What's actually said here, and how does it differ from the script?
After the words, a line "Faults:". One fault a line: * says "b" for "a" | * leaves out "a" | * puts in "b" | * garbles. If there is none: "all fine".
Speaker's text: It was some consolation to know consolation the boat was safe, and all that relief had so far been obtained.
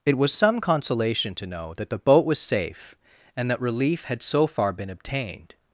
It was some consolation to know that the boat was safe, and that relief had so far been obtained.
Faults:
* says "that" for "consolation"
* leaves out "all"